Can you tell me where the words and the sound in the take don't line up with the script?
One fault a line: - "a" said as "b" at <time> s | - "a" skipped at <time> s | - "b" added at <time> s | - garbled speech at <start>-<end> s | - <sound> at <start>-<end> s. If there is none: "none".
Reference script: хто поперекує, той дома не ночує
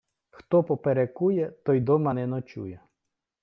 none